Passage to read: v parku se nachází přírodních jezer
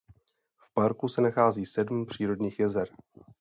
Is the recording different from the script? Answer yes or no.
yes